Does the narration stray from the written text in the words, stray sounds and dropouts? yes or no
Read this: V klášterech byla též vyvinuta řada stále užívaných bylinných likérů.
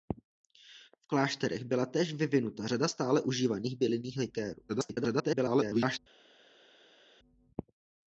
yes